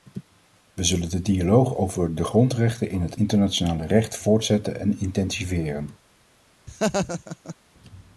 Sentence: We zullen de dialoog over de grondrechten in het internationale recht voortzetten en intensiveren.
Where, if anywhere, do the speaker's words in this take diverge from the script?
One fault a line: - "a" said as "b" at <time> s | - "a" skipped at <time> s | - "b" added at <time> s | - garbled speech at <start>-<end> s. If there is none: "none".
none